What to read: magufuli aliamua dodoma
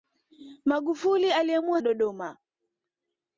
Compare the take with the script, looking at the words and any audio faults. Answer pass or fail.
pass